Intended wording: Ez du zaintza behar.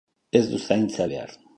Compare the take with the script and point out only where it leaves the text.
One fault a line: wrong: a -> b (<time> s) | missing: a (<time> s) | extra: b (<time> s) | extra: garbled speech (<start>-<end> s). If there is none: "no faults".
no faults